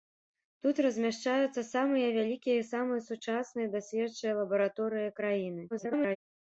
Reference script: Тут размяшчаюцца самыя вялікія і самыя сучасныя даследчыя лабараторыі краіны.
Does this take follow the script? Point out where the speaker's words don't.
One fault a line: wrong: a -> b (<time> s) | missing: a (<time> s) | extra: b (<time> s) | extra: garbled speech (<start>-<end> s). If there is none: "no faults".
extra: garbled speech (5.7-6.2 s)